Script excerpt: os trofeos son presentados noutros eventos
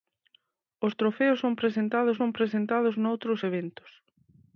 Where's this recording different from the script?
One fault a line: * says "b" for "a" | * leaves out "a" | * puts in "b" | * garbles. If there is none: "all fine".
* puts in "son presentados"